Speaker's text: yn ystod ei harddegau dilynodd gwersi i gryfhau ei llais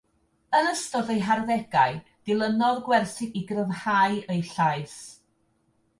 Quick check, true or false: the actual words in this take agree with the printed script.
true